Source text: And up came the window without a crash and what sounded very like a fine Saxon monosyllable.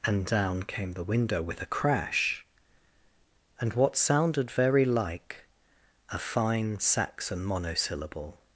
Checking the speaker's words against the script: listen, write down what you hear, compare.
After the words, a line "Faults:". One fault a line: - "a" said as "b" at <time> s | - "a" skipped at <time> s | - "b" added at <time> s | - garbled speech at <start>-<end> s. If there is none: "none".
And down came the window with a crash and what sounded very like a fine Saxon monosyllable.
Faults:
- "up" said as "down" at 0.2 s
- "without" said as "with" at 1.4 s